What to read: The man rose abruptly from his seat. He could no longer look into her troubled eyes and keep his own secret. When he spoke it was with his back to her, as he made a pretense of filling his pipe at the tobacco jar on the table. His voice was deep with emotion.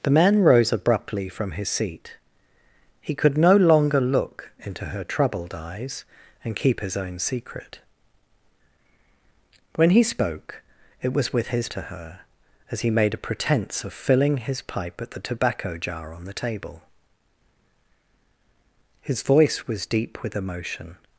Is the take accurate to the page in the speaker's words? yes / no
no